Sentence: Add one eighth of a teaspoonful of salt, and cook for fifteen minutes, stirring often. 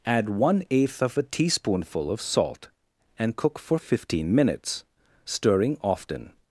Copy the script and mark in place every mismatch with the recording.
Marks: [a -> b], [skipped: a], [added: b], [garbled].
Add one eighth of a teaspoonful of salt, and cook for fifteen minutes, stirring often.